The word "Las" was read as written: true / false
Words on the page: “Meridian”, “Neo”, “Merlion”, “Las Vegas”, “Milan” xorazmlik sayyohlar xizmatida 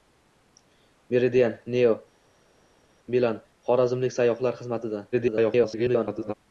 false